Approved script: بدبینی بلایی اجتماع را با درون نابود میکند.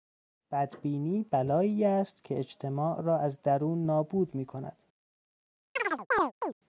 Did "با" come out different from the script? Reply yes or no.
yes